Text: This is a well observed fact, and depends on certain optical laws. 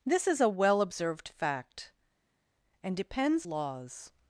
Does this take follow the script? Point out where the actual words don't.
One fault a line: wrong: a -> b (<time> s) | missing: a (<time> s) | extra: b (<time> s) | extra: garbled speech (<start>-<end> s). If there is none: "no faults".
missing: on certain optical (3.5 s)